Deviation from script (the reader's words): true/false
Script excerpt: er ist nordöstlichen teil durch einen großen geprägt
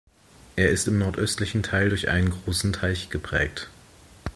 true